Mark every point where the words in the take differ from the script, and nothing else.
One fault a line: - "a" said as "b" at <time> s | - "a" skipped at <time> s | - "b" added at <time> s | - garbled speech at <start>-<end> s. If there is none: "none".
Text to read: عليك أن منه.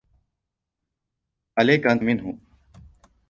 none